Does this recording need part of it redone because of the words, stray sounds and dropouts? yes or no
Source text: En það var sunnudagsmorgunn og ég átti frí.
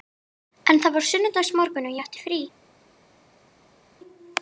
no